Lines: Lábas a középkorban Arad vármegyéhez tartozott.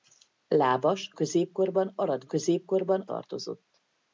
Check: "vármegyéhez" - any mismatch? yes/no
yes